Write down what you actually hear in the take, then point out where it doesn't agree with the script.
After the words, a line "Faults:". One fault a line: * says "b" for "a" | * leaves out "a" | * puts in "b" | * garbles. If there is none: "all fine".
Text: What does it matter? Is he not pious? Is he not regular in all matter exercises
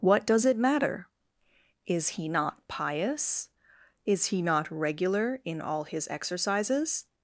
What does it matter? Is he not pious? Is he not regular in all his exercises
Faults:
* says "his" for "matter"